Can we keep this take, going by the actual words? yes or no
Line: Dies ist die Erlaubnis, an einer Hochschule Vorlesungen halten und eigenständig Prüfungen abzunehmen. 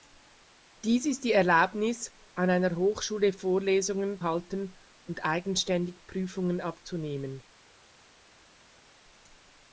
yes